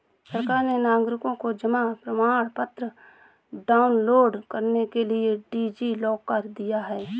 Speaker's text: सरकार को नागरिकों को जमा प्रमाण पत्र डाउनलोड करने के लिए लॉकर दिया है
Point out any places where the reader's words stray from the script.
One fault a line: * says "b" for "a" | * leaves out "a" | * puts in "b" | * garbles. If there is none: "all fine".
* says "ने" for "को"
* puts in "डी.जी"